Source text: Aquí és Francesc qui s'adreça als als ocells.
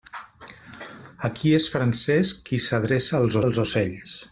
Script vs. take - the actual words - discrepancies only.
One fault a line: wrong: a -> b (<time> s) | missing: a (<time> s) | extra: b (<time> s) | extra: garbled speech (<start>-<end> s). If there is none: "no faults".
no faults